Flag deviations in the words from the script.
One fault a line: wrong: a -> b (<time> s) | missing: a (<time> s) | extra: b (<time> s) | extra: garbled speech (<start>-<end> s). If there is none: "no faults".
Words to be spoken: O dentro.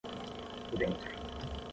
no faults